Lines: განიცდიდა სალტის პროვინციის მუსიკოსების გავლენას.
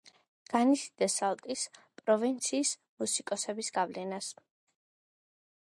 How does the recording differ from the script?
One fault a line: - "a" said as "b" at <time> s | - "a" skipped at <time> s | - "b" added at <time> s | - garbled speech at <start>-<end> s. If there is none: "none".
none